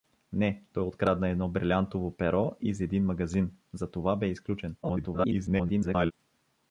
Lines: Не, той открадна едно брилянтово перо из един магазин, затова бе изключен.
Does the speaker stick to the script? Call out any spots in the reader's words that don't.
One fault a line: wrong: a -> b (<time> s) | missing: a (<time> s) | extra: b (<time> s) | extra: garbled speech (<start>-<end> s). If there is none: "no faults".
extra: garbled speech (4.8-6.1 s)